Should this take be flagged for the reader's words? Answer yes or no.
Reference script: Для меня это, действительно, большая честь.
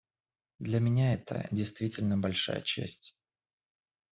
no